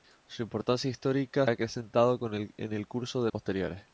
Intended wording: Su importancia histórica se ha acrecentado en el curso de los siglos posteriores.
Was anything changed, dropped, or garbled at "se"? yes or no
yes